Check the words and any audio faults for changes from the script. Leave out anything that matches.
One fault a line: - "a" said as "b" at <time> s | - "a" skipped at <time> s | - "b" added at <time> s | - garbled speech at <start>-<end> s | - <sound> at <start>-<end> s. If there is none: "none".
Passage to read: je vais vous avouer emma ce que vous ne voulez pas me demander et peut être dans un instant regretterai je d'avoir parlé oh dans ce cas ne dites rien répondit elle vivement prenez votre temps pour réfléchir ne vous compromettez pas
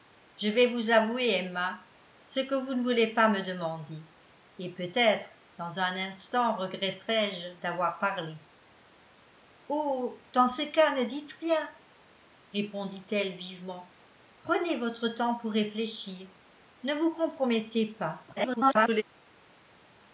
- garbled speech at 18.3-19.0 s